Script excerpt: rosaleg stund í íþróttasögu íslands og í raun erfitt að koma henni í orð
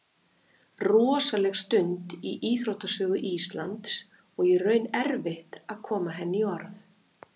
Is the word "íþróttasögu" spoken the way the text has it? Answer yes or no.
yes